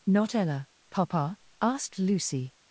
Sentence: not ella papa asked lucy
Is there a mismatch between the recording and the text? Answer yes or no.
no